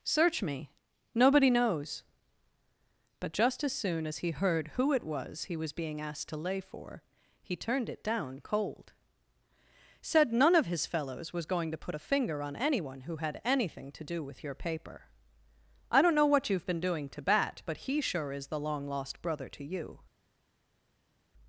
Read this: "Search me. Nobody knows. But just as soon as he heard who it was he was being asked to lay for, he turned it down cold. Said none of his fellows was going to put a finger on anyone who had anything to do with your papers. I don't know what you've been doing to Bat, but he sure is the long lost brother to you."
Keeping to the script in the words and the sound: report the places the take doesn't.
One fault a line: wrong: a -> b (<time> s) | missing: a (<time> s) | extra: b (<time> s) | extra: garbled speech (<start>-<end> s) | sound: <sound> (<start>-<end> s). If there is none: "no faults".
wrong: papers -> paper (14.5 s)